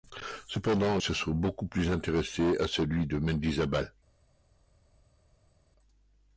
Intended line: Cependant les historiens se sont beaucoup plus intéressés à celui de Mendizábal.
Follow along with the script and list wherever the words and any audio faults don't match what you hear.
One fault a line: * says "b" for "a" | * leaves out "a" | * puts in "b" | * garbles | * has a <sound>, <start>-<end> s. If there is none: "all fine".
* leaves out "les historiens"